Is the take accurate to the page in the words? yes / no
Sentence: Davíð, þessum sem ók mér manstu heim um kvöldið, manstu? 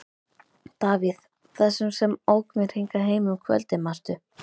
no